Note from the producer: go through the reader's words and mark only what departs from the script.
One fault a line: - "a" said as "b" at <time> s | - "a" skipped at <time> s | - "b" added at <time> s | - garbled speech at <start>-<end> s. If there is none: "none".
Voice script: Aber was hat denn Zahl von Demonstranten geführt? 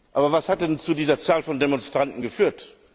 - "zu dieser" added at 0.8 s